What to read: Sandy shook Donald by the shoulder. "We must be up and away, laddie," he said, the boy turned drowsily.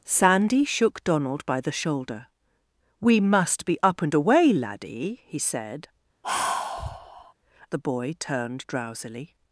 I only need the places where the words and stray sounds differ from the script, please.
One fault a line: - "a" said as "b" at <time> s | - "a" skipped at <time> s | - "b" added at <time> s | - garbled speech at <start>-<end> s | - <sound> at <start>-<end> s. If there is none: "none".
- sigh at 6.2-7.3 s